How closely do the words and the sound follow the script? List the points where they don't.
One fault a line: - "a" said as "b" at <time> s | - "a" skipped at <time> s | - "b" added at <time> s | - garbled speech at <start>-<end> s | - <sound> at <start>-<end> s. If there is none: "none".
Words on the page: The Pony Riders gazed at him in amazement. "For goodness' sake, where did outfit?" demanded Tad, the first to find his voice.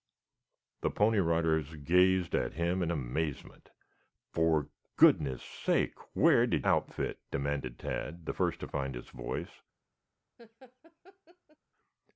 - laugh at 10.4-11.6 s